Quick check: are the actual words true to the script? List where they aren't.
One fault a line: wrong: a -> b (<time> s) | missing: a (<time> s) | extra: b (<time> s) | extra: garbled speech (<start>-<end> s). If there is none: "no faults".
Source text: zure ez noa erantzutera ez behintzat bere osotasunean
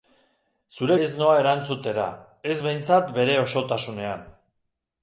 no faults